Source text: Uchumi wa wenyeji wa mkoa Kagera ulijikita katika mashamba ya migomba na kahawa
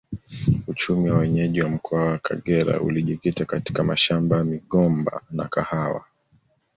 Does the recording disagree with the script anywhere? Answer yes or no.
yes